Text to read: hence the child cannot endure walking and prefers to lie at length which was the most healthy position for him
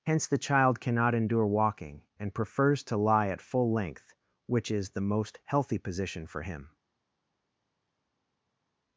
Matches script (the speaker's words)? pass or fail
fail